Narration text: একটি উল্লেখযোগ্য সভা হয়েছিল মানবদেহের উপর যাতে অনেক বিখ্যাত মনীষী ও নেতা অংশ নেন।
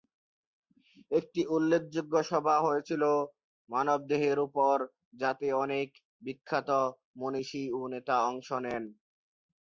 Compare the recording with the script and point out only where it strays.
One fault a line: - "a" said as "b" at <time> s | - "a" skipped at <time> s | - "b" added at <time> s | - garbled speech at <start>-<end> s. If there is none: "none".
none